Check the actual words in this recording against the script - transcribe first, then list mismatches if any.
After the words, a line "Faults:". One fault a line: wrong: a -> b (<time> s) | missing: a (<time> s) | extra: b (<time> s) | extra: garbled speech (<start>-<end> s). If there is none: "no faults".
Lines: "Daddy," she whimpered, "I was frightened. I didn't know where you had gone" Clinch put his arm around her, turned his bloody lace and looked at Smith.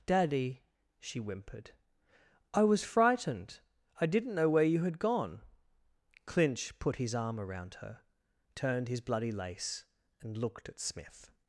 "Daddy," she whimpered, "I was frightened. I didn't know where you had gone" Clinch put his arm around her, turned his bloody lace and looked at Smith.
Faults:
no faults